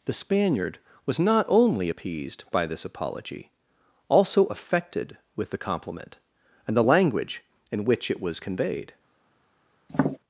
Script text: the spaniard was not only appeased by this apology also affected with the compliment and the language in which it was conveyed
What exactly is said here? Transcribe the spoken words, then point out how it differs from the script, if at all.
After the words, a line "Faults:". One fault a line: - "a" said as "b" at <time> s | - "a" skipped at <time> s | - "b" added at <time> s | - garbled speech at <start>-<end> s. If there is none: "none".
the spaniard was not only appeased by this apology also affected with the compliment and the language in which it was conveyed
Faults:
none